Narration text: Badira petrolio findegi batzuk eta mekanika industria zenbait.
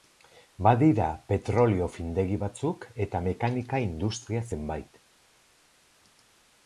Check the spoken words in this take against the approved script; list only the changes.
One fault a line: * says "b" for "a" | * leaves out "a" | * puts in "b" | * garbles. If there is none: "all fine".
all fine